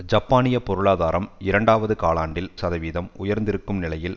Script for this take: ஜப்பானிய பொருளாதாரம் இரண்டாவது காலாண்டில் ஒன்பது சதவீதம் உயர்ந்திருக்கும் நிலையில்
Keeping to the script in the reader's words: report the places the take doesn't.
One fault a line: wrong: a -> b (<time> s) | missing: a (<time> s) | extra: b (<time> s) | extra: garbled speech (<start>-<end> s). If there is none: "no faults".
missing: ஒன்பது (2.5 s)